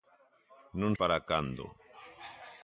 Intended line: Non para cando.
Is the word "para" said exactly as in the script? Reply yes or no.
yes